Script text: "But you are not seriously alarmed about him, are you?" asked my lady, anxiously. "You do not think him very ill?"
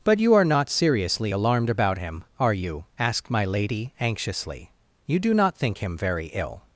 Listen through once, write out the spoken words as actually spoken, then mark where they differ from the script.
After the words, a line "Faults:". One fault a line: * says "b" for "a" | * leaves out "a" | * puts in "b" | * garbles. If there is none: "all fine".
"But you are not seriously alarmed about him, are you?" asked my lady, anxiously. "You do not think him very ill?"
Faults:
all fine